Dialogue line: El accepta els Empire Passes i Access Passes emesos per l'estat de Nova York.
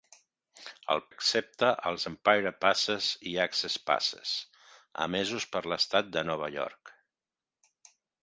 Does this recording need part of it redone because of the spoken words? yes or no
no